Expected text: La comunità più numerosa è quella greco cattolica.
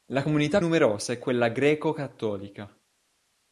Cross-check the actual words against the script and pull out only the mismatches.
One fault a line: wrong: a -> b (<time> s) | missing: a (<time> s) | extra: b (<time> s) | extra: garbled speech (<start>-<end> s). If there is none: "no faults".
missing: più (0.6 s)